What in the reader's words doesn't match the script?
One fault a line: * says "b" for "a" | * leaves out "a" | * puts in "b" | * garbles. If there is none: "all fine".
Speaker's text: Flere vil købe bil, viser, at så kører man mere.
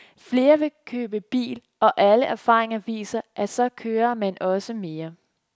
* puts in "og alle erfaringer"
* puts in "også"